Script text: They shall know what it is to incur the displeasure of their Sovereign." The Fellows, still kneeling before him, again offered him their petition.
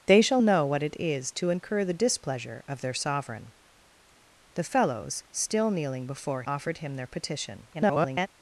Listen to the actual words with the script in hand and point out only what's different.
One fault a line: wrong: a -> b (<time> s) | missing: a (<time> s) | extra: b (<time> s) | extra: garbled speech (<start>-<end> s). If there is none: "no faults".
missing: him again (6.4 s)
extra: garbled speech (7.7-8.3 s)